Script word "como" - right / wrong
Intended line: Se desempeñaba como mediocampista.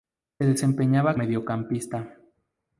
wrong